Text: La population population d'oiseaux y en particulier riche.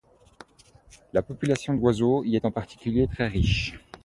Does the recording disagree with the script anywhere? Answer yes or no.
yes